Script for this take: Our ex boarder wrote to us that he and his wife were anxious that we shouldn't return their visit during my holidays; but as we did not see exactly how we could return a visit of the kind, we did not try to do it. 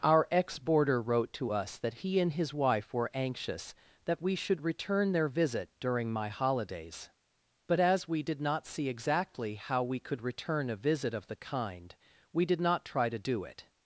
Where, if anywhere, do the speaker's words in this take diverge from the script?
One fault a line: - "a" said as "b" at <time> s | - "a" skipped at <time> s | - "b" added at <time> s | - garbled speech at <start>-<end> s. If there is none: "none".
- "shouldn't" said as "should" at 4.3 s